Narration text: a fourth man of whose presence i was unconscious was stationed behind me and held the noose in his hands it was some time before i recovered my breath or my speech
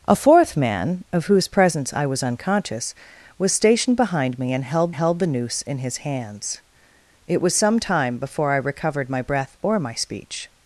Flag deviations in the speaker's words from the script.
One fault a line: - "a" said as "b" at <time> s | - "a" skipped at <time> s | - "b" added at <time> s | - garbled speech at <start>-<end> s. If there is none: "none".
- "held" added at 4.9 s